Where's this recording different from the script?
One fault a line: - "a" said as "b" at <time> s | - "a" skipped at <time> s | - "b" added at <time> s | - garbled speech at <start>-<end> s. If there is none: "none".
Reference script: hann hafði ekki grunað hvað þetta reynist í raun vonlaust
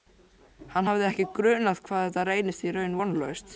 none